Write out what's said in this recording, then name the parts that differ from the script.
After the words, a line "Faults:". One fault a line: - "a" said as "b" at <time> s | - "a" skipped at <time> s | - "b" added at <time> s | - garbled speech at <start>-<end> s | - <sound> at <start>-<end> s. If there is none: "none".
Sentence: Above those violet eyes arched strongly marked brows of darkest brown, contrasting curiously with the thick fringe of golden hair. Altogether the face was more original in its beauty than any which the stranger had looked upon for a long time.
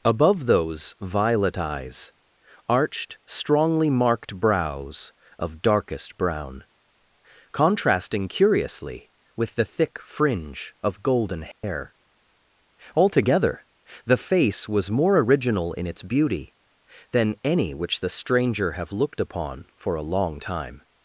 Above those violet eyes arched strongly marked brows of darkest brown, contrasting curiously with the thick fringe of golden hair. Altogether the face was more original in its beauty than any which the stranger have looked upon for a long time.
Faults:
- dropout at 11.5-11.6 s
- "had" said as "have" at 18.7 s